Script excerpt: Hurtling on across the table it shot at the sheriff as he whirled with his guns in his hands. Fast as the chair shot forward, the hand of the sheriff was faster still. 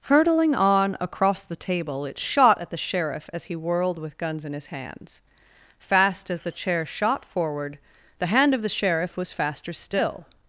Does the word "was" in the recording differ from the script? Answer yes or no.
no